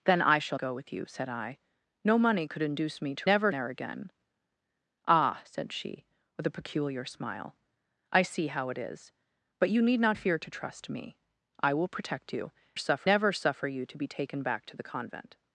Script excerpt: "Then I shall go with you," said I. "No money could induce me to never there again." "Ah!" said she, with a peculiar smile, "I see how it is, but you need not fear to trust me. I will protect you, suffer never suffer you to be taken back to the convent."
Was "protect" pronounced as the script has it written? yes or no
yes